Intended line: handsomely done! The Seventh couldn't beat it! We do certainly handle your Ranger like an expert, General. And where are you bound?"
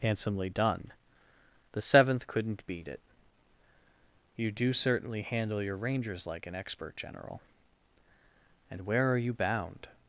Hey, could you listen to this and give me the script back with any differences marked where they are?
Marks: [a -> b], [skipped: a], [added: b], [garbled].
handsomely done! The Seventh couldn't beat it! [We -> You] do certainly handle your [Ranger -> Rangers] like an expert, General. And where are you bound?"